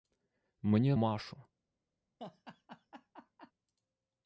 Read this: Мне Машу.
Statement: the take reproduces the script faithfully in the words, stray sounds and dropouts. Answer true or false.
false